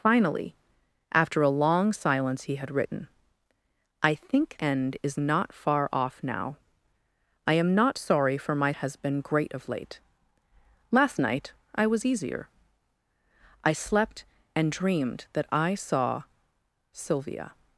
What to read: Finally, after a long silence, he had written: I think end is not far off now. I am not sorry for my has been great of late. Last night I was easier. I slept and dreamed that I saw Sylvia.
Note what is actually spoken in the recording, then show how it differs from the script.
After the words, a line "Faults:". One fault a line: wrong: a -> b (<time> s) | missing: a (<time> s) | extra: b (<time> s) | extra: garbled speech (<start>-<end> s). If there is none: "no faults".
Finally, after a long silence, he had written: I think end is not far off now. I am not sorry for my has been great of late. Last night I was easier. I slept and dreamed that I saw Sylvia.
Faults:
no faults